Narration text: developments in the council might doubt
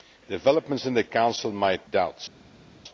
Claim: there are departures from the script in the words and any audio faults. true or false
false